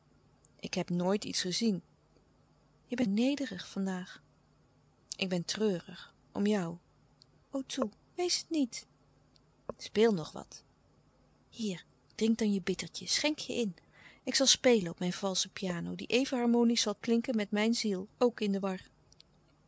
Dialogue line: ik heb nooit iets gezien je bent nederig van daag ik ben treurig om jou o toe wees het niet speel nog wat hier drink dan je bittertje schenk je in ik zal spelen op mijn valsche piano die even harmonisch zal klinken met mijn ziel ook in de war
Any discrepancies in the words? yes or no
no